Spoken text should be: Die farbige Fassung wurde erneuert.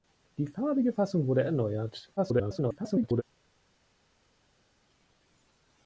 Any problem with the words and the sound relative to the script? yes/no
yes